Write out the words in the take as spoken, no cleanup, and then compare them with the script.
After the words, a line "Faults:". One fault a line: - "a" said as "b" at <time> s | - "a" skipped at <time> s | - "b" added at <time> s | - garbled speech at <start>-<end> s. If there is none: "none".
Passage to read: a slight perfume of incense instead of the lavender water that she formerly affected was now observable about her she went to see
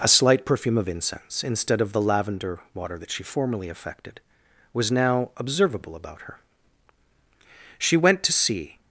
a slight perfume of incense instead of the lavender water that she formerly affected was now observable about her she went to see
Faults:
none